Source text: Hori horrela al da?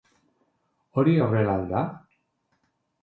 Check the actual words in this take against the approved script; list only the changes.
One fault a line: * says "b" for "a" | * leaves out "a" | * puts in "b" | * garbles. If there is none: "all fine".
all fine